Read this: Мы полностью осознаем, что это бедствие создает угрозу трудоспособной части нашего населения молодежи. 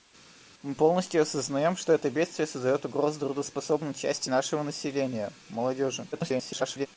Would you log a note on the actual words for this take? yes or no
yes